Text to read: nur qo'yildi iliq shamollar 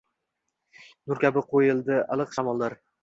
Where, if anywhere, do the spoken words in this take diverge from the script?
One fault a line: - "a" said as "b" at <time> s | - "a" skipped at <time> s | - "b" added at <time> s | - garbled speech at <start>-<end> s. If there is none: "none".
- "kabi" added at 1.2 s